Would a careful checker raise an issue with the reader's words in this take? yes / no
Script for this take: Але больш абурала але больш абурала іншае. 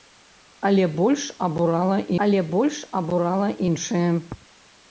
no